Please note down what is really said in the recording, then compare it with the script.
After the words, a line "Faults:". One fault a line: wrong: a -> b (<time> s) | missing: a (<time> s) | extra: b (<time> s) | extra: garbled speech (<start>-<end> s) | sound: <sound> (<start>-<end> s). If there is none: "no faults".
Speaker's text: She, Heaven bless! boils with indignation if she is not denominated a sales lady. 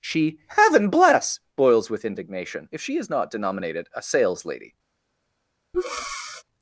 She, Heaven bless! boils with indignation if she is not denominated a sales lady.
Faults:
sound: breath (5.7-6.4 s)